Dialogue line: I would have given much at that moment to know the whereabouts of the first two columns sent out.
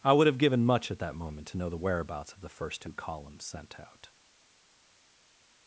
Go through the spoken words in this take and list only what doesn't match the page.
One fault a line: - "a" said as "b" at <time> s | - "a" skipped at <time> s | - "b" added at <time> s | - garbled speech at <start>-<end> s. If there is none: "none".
none